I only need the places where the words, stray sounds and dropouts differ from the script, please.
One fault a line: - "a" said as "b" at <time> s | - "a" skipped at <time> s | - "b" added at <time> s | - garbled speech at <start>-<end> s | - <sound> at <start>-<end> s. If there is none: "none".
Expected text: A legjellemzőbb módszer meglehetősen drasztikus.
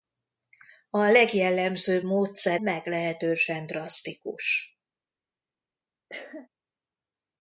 - cough at 6.1-6.5 s